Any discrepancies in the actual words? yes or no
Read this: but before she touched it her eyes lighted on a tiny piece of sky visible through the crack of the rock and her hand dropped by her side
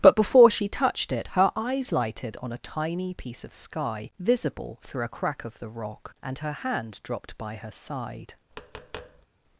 yes